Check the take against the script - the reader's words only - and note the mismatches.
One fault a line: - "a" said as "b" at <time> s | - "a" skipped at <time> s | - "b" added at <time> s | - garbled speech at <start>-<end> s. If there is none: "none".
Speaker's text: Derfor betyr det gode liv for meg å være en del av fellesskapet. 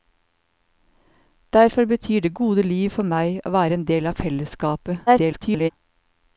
- garbled speech at 5.1-5.7 s